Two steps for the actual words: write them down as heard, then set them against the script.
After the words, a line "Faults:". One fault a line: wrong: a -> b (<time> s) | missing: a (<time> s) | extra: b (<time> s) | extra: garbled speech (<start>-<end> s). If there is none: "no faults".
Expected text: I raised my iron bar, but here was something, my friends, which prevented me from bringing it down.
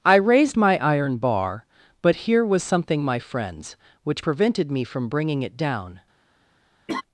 I raised my iron bar, but here was something, my friends, which prevented me from bringing it down.
Faults:
no faults